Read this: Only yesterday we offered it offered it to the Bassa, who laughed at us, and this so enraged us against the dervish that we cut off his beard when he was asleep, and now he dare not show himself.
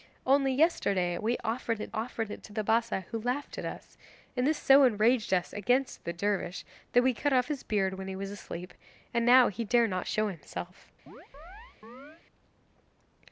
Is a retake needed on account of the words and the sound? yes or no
yes